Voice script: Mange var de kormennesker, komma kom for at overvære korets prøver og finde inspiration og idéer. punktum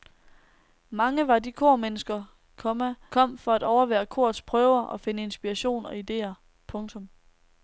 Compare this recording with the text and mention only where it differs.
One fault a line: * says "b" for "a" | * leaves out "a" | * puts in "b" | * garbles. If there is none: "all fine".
all fine